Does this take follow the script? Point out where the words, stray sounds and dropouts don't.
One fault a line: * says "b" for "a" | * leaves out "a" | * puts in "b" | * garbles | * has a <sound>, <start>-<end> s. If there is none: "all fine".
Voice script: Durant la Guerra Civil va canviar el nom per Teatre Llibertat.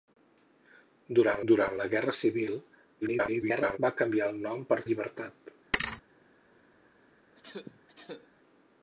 * puts in "durant"
* garbles
* leaves out "Teatre"
* has a thud, 5.7-6.0 s
* has a cough, 7.3-8.3 s